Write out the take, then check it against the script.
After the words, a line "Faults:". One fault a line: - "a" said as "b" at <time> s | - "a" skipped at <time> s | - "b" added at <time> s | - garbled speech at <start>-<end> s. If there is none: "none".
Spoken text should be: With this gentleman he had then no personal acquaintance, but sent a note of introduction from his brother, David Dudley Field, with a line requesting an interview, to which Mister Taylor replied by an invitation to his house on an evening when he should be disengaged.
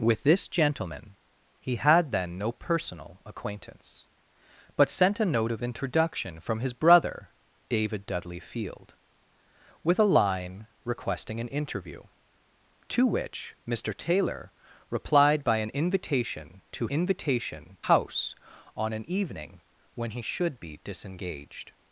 With this gentleman he had then no personal acquaintance, but sent a note of introduction from his brother, David Dudley Field, with a line requesting an interview, to which Mister Taylor replied by an invitation to invitation house on an evening when he should be disengaged.
Faults:
- "his" said as "invitation" at 16.8 s